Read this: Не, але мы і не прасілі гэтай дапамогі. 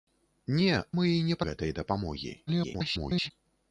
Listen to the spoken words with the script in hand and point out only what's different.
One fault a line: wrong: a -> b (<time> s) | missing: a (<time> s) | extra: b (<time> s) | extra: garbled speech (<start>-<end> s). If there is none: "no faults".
missing: але (0.7 s)
missing: прасілі (1.4 s)
extra: garbled speech (2.5-3.3 s)